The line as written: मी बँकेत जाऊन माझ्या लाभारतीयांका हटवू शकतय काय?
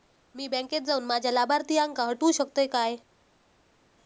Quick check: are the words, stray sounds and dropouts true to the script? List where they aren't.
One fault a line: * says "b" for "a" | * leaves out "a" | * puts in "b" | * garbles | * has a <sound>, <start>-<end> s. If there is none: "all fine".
all fine